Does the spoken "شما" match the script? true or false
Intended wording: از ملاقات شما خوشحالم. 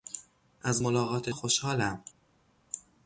false